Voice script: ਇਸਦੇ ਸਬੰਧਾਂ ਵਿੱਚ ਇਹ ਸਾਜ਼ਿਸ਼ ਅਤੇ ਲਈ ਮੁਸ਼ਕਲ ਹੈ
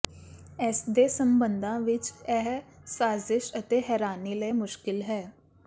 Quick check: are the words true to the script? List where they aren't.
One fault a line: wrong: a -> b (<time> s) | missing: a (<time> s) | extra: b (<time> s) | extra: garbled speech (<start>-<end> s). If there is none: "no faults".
extra: ਹੈਰਾਨੀ (3.9 s)